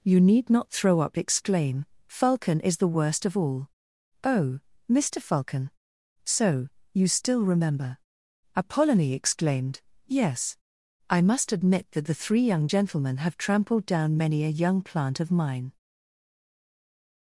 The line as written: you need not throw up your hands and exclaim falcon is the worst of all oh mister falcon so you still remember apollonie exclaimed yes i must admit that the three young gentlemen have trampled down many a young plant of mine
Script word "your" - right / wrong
wrong